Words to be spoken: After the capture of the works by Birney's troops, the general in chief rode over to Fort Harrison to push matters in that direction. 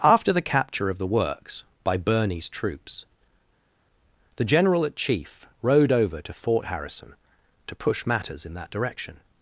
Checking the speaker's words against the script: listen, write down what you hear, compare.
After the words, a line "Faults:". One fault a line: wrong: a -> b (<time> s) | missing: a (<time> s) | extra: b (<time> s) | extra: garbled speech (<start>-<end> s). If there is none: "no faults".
After the capture of the works by Birney's troops, the general at chief rode over to Fort Harrison to push matters in that direction.
Faults:
wrong: in -> at (4.9 s)